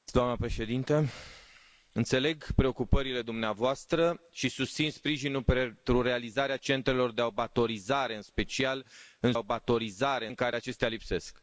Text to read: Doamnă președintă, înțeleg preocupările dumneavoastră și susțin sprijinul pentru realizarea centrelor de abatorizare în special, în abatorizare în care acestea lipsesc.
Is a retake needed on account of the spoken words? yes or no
no